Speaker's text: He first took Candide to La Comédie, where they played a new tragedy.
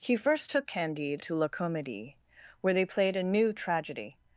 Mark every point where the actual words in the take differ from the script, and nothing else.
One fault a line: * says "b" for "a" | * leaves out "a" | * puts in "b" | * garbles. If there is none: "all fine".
all fine